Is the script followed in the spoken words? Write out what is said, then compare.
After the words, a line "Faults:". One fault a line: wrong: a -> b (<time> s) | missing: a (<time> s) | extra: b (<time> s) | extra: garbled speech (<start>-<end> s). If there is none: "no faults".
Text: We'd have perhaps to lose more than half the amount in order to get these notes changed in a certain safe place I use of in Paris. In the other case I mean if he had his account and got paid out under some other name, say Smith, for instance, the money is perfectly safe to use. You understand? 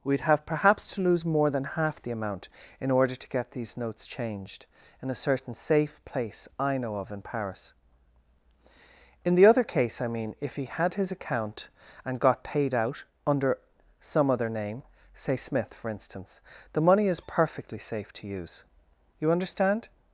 We'd have perhaps to lose more than half the amount in order to get these notes changed in a certain safe place I know of in Paris. In the other case I mean if he had his account and got paid out under some other name, say Smith, for instance, the money is perfectly safe to use. You understand?
Faults:
wrong: use -> know (6.8 s)